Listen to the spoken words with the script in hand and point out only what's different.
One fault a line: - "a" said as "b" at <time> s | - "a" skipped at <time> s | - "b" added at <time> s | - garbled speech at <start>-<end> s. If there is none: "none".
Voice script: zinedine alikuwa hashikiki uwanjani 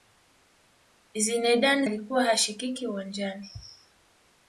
none